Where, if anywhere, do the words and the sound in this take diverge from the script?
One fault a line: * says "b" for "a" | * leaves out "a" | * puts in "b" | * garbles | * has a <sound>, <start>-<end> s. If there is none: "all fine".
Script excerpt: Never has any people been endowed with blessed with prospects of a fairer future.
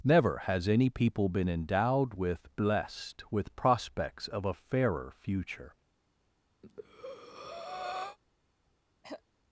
* has a breath, 6.6-8.2 s
* has a throat clearing, 9.0-9.2 s